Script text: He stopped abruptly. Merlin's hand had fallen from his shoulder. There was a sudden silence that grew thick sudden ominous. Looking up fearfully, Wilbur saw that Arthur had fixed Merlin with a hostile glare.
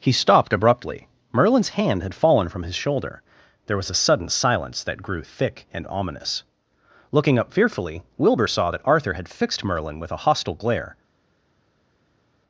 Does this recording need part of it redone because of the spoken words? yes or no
yes